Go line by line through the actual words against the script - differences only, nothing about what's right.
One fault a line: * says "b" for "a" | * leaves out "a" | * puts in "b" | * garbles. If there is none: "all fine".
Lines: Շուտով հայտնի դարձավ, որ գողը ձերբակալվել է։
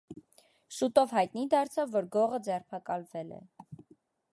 all fine